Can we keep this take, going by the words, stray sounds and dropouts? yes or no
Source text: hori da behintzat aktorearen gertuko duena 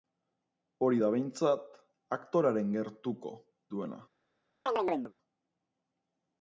no